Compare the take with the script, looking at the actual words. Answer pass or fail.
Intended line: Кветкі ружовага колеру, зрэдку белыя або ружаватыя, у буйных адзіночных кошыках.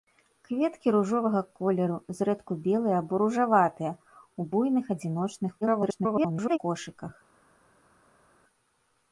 fail